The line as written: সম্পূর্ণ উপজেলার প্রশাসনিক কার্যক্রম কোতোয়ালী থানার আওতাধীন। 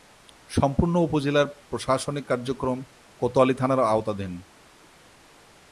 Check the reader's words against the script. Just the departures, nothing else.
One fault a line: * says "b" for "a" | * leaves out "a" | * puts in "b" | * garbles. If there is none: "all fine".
all fine